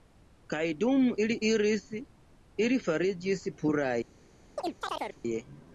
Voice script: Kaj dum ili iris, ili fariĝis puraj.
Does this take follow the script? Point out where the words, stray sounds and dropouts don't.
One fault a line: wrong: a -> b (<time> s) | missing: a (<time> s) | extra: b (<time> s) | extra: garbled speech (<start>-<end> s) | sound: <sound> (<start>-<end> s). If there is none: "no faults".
sound: chirp (4.6-5.2 s)